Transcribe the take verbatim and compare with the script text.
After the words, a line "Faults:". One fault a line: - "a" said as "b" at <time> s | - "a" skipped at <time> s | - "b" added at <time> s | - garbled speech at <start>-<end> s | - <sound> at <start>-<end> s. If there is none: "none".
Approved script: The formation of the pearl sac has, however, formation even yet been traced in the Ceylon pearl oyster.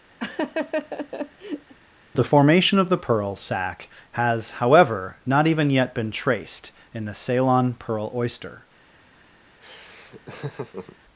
The formation of the pearl sac has, however, not even yet been traced in the Ceylon pearl oyster.
Faults:
- laugh at 0.2-1.7 s
- "formation" said as "not" at 5.3 s
- laugh at 9.6-11.0 s